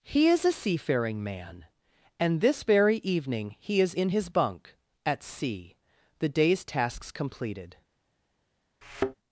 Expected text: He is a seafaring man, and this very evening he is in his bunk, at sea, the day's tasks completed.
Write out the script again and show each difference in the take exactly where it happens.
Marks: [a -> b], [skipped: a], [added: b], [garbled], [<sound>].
He is a seafaring man, and this very evening he is in his bunk, at sea, the day's tasks completed. [thud]